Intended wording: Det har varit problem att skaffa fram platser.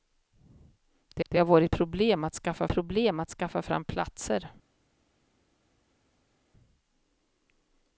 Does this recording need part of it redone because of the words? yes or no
yes